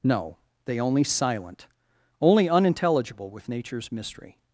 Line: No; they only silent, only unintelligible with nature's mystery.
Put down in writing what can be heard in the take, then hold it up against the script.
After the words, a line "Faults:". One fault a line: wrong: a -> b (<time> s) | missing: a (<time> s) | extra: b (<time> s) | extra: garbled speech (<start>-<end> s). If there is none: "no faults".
No; they only silent, only unintelligible with nature's mystery.
Faults:
no faults